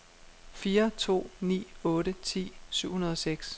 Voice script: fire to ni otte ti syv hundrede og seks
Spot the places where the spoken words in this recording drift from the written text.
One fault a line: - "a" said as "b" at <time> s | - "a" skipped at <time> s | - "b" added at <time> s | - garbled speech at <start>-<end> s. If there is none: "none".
none